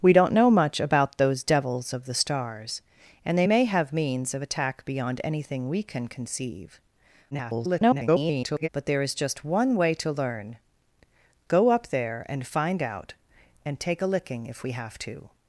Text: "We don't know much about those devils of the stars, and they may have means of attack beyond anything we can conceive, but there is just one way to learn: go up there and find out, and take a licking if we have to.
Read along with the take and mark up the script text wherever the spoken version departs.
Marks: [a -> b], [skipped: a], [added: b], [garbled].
"We don't know much about those devils of the stars, and they may have means of attack beyond anything we can conceive, [garbled] but there is just one way to learn: go up there and find out, and take a licking if we have to.